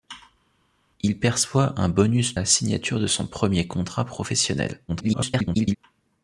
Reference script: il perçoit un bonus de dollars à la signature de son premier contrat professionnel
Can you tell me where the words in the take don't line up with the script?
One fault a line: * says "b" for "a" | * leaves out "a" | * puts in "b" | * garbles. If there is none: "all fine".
* leaves out "de dollars à"
* garbles